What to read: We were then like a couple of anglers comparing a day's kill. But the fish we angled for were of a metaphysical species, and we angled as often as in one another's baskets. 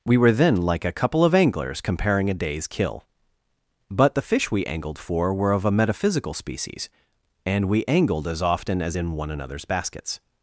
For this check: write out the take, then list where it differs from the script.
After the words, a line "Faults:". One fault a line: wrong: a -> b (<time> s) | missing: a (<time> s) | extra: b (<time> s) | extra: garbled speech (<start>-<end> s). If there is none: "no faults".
We were then like a couple of anglers comparing a day's kill. But the fish we angled for were of a metaphysical species, and we angled as often as in one another's baskets.
Faults:
no faults